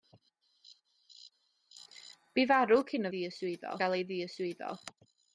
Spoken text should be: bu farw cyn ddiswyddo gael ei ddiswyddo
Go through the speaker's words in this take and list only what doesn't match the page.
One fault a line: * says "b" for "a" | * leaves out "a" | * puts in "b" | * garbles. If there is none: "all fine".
all fine